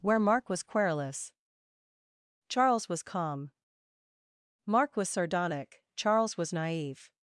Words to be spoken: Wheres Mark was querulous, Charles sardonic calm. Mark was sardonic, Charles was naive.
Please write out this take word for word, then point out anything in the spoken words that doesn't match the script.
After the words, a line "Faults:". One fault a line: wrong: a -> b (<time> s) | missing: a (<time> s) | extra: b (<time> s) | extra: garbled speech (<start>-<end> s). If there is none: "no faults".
Where Mark was querulous, Charles was calm. Mark was sardonic, Charles was naive.
Faults:
wrong: Wheres -> Where (0.0 s)
wrong: sardonic -> was (2.9 s)